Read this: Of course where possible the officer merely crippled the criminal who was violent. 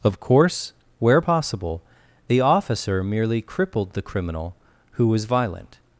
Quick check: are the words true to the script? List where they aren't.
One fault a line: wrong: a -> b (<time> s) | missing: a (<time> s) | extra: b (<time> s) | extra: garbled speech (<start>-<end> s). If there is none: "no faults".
no faults